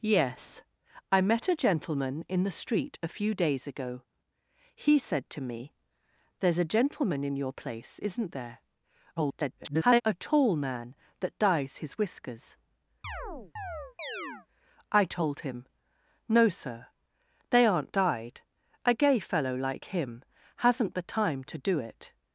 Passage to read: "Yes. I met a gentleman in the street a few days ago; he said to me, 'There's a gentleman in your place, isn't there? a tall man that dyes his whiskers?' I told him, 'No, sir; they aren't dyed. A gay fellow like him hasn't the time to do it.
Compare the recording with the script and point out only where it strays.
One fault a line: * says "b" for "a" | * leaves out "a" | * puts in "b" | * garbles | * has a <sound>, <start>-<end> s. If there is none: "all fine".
* garbles
* has a chirp, 13.0-14.5 s